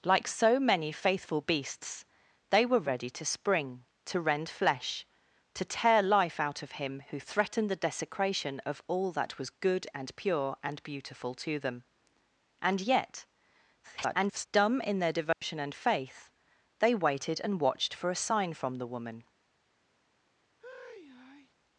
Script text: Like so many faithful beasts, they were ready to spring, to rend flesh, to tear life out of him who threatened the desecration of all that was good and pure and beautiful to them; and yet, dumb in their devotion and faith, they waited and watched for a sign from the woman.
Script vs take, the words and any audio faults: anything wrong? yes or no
yes